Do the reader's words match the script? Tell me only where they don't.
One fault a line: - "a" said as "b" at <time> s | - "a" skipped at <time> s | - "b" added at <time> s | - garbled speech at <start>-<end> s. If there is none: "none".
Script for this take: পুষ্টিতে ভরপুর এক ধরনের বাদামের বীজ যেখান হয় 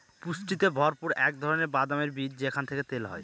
- "থেকে তেল" added at 2.6 s